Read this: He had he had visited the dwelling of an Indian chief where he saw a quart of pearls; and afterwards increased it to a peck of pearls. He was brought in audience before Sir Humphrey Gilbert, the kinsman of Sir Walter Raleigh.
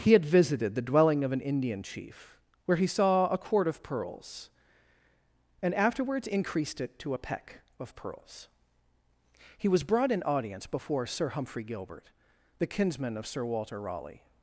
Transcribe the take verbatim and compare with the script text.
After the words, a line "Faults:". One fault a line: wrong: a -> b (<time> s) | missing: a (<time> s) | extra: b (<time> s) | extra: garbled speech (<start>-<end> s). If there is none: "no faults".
He had visited the dwelling of an Indian chief where he saw a quart of pearls; and afterwards increased it to a peck of pearls. He was brought in audience before Sir Humphrey Gilbert, the kinsman of Sir Walter Raleigh.
Faults:
missing: he had (0.2 s)